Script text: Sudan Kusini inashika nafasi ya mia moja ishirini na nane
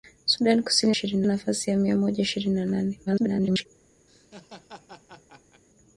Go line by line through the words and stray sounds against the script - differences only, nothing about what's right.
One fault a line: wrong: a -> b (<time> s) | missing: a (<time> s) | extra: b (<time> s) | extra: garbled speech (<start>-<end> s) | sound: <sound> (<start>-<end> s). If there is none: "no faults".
wrong: inashika -> ishirini (0.9 s)
extra: garbled speech (3.1-3.7 s)
sound: laugh (4.1-5.6 s)